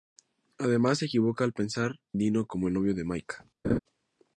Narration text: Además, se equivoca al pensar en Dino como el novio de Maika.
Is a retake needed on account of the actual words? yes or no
yes